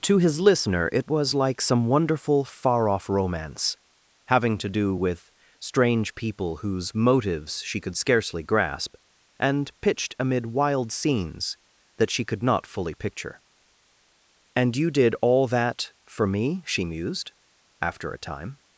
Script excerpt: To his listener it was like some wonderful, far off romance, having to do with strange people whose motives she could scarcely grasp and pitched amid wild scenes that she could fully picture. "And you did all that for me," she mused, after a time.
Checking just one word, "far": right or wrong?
right